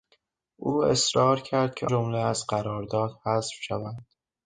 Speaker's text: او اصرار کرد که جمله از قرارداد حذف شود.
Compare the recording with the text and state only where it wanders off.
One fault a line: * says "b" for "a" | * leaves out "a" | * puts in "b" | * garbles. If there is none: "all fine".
all fine